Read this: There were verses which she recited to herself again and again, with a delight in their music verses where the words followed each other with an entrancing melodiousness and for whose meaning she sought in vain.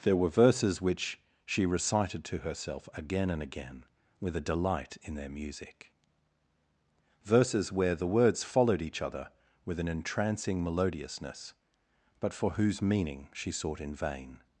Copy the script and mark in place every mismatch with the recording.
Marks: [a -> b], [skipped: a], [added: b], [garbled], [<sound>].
There were verses which she recited to herself again and again, with a delight in their music verses where the words followed each other with an entrancing melodiousness [and -> but] for whose meaning she sought in vain.